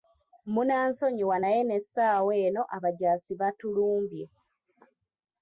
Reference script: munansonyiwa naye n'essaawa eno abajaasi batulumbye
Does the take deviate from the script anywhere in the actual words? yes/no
no